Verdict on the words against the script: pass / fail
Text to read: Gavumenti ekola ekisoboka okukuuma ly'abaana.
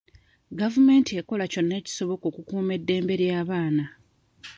fail